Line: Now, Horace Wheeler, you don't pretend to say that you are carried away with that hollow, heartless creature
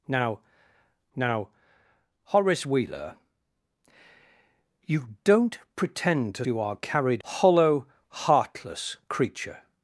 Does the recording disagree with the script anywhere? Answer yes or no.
yes